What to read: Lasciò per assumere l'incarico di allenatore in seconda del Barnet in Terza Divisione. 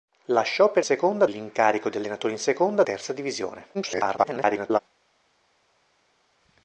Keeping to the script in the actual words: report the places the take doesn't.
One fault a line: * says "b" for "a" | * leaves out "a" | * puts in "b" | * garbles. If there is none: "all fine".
* says "seconda" for "assumere"
* leaves out "del Barnet in"
* garbles